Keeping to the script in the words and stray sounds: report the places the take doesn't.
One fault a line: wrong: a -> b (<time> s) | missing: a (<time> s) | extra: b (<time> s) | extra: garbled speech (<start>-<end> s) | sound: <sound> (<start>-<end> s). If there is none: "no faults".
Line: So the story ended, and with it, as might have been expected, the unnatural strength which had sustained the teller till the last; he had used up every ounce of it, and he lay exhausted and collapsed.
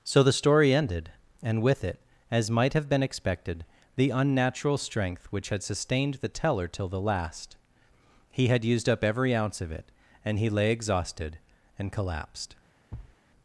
sound: thud (12.9-13.2 s)